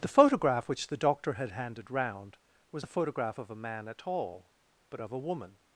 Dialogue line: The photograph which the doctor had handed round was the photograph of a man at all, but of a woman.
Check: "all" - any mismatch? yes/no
no